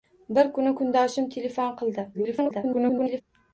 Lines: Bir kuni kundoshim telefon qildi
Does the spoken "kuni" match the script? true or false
true